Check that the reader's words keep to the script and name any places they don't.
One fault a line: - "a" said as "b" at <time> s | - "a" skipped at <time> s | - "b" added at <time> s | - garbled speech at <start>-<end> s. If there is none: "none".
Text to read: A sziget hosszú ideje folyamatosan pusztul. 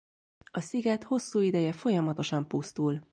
none